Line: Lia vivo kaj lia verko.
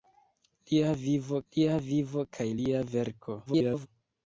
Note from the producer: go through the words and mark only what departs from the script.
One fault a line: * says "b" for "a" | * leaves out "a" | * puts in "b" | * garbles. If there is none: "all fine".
* puts in "lia vivo"
* garbles